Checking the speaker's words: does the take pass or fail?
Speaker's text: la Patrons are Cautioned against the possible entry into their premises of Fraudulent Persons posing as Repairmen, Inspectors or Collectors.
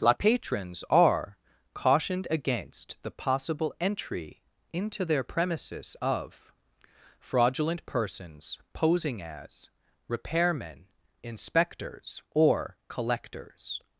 pass